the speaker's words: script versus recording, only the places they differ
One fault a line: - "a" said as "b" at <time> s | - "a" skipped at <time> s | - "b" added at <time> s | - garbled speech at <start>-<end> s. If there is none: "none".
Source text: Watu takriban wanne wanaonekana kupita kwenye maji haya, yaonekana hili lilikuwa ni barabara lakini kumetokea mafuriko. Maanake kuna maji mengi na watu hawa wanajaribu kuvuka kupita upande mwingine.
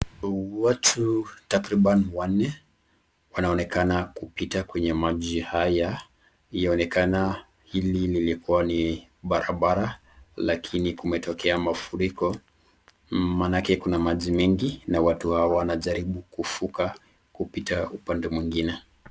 none